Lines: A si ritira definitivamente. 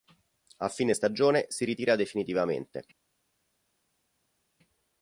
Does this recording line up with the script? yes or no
no